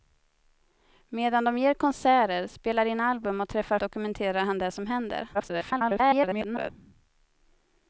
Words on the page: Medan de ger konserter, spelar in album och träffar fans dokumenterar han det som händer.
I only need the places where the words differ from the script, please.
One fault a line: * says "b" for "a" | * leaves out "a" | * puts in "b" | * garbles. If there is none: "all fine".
* leaves out "fans"
* garbles